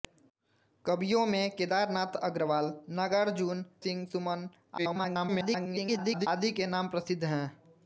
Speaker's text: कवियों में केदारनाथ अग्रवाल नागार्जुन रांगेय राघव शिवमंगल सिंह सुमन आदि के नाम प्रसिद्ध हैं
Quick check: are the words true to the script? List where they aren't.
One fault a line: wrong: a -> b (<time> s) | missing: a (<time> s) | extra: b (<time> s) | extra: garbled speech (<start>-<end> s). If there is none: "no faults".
missing: रांगेय राघव शिवमंगल (3.7 s)
extra: garbled speech (4.8-6.3 s)